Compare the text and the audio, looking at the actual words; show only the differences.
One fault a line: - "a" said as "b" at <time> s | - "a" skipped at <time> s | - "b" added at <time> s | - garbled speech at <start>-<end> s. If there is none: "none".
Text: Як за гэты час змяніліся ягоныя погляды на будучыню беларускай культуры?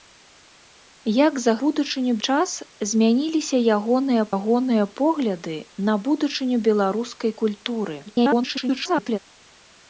- "гэты" said as "будучыню" at 1.7 s
- "ягоныя" added at 4.4 s
- garbled speech at 8.1-9.2 s